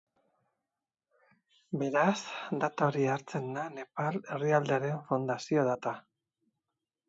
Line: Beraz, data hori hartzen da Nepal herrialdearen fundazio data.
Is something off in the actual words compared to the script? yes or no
no